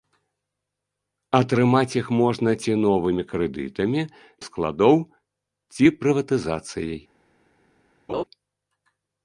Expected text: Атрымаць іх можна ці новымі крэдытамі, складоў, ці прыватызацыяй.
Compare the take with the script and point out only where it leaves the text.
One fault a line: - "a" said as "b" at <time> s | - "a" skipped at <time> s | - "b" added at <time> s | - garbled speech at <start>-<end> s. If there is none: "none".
none